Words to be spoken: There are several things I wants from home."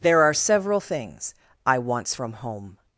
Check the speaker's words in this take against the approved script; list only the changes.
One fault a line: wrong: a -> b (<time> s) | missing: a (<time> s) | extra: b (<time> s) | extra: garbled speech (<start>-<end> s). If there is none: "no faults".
no faults